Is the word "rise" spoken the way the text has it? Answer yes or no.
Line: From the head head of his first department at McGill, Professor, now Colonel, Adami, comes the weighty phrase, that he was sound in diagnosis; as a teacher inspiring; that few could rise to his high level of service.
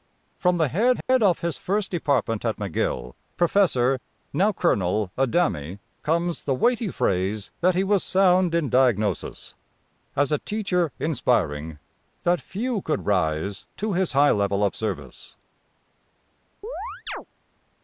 yes